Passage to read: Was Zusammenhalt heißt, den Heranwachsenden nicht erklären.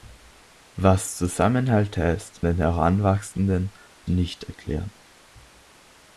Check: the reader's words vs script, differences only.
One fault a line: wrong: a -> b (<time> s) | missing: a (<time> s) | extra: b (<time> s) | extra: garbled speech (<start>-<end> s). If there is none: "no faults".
no faults